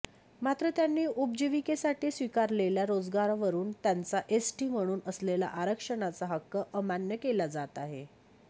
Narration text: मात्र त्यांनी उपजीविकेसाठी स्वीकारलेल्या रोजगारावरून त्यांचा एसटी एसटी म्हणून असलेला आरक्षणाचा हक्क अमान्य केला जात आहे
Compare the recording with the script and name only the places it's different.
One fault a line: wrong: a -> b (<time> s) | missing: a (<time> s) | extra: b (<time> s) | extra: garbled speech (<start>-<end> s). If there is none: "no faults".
missing: एसटी (4.7 s)